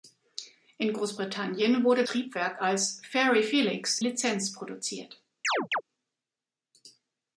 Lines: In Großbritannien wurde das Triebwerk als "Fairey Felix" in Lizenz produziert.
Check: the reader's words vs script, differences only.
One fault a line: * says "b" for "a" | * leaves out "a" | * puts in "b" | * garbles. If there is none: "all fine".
* leaves out "das"
* leaves out "in"